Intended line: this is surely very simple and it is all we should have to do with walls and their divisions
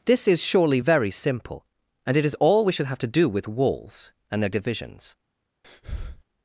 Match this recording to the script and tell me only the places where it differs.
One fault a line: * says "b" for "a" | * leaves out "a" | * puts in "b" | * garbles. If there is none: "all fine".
all fine